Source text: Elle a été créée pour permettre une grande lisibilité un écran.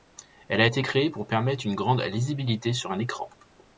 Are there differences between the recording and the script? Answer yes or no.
yes